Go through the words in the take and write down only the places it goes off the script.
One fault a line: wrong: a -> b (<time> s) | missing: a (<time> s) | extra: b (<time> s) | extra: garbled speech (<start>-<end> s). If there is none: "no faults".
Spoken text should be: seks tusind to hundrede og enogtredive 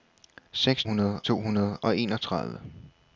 wrong: tusind -> hundrede (0.8 s)